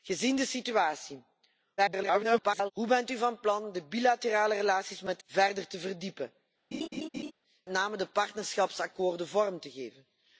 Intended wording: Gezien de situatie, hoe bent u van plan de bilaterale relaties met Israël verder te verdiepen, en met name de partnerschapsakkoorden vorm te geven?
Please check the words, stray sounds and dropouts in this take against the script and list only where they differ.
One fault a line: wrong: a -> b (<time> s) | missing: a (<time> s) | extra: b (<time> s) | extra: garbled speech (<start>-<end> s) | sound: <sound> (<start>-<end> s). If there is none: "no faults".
extra: garbled speech (1.8-2.7 s)
missing: Israël (5.2 s)
missing: en met (6.3 s)
sound: laugh (6.7-7.3 s)